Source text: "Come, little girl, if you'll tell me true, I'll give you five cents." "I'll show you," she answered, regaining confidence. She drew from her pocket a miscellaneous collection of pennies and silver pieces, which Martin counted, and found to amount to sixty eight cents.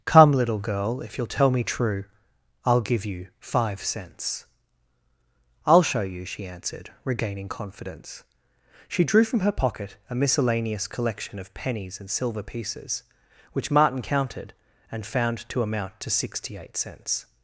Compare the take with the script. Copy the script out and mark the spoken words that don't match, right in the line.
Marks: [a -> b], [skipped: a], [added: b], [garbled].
"Come, little girl, if you'll tell me true, I'll give you five cents." "I'll show you," she answered, regaining confidence. She drew from her pocket a miscellaneous collection of pennies and silver pieces, which Martin counted, and found to amount to sixty eight cents.